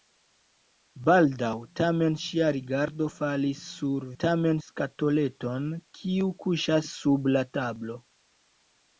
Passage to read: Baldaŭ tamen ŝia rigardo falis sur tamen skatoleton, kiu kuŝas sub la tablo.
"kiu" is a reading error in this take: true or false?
false